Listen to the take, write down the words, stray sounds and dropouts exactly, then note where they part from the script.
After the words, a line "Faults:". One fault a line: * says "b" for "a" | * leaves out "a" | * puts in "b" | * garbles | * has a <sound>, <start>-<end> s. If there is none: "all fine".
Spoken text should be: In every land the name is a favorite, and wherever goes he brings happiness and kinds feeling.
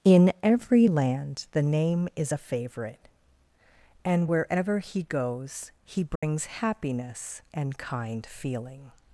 In every land the name is a favorite, and wherever he goes he brings happiness and kind feeling.
Faults:
* puts in "he"
* has a dropout, 6.2-6.2 s
* says "kind" for "kinds"